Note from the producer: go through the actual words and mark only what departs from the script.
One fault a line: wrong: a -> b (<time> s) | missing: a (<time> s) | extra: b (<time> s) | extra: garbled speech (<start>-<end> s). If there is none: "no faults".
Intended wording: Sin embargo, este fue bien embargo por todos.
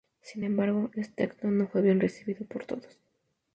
extra: acto no (1.2 s)
wrong: embargo -> recibido (2.0 s)